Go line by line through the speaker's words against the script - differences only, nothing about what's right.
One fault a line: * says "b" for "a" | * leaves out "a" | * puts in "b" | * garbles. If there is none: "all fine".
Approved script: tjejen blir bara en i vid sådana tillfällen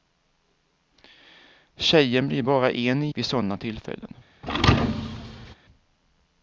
all fine